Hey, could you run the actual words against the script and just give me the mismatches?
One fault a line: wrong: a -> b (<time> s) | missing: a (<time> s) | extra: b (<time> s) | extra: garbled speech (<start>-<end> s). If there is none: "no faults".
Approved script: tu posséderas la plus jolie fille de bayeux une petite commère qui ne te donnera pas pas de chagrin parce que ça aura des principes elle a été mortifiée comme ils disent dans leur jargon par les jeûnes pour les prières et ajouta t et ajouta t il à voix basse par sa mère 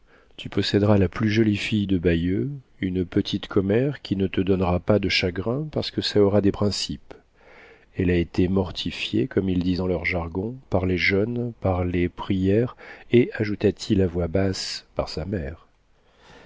missing: pas (5.0 s)
wrong: pour -> par (11.6 s)
missing: et ajouta t (13.9 s)